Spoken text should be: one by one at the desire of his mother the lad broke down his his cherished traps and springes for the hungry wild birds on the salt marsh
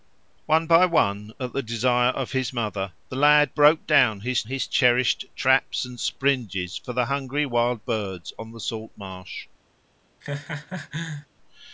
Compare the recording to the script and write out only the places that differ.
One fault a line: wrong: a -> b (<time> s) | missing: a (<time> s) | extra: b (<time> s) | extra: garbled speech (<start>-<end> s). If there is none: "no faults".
no faults